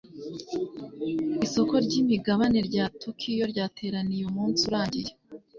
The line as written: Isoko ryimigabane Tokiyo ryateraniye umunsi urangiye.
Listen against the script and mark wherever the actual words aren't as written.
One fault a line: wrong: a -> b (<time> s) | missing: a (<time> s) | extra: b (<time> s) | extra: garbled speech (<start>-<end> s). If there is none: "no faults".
extra: rya (2.7 s)